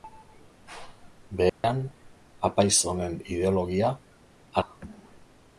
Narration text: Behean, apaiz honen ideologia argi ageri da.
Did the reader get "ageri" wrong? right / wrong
wrong